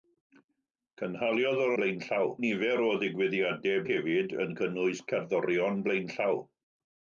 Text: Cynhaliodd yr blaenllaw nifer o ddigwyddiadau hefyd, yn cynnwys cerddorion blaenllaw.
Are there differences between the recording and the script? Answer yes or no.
no